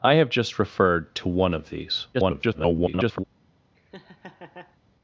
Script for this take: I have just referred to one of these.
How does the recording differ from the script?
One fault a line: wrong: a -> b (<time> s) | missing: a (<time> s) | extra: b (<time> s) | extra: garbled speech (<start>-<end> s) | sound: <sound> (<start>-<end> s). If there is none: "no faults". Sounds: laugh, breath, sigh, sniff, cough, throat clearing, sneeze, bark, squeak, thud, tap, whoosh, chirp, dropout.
extra: garbled speech (2.1-3.2 s)
sound: laugh (3.7-4.8 s)